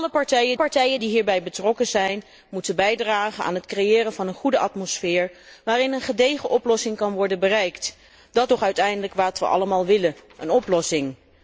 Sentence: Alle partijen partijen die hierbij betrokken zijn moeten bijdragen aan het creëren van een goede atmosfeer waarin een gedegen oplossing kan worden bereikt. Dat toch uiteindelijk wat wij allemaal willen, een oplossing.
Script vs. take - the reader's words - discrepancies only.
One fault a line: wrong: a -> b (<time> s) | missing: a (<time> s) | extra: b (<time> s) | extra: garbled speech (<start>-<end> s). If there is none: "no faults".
no faults